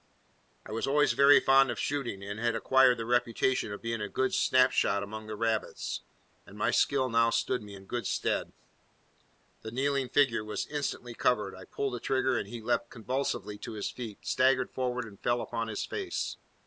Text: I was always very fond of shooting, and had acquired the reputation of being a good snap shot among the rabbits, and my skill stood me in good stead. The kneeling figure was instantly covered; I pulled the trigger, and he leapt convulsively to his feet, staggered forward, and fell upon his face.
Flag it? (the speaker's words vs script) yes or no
yes